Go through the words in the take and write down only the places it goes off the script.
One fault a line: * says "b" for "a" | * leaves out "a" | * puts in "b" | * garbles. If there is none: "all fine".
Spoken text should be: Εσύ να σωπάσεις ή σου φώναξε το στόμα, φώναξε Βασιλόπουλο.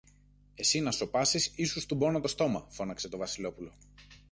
* says "στουμπώνω" for "φώναξε"
* puts in "το"